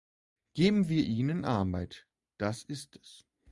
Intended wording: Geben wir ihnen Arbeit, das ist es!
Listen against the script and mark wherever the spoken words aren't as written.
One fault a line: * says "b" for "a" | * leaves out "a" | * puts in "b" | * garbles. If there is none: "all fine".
all fine